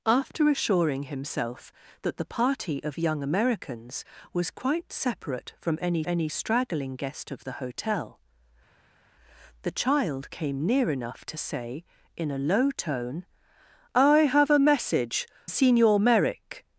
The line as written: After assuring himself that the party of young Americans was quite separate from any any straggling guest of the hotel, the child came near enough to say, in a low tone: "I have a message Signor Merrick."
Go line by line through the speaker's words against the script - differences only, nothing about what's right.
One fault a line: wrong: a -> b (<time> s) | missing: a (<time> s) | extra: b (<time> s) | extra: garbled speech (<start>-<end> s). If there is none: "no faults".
no faults